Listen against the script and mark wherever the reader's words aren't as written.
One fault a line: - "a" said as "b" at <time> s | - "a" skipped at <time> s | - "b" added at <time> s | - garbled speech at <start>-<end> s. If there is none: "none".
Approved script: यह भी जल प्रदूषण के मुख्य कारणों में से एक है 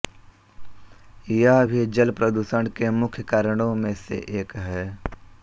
none